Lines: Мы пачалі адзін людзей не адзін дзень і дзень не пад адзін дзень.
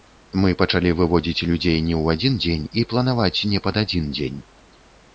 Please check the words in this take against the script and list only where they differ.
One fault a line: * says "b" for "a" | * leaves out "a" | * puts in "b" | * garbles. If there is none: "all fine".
* says "выводзіць" for "адзін"
* puts in "ў"
* says "планаваць" for "дзень"